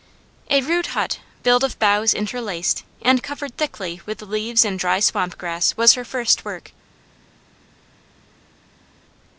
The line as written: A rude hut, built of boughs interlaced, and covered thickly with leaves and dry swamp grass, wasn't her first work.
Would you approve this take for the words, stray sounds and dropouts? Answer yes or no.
no